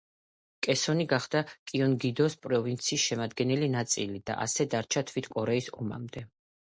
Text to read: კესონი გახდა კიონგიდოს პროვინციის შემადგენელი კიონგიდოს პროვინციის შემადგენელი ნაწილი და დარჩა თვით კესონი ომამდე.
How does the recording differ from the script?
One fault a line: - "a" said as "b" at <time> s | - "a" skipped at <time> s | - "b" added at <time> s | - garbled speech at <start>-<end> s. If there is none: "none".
- "კიონგიდოს პროვინციის შემადგენელი" skipped at 3.7 s
- "ასე" added at 4.5 s
- "კესონი" said as "კორეის" at 5.4 s